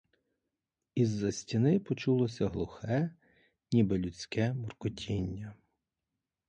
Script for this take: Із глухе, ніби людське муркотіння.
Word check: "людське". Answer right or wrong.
right